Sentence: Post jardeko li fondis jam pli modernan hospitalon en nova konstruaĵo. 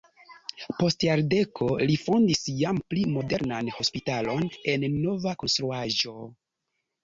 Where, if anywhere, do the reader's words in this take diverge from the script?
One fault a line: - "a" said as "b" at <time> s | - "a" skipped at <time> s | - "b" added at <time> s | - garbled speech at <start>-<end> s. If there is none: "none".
none